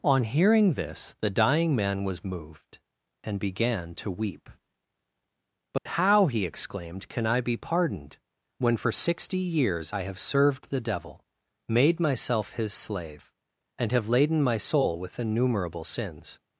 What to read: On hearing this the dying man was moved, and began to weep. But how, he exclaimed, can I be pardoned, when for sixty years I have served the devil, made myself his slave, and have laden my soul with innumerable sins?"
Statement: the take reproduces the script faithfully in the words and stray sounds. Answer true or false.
false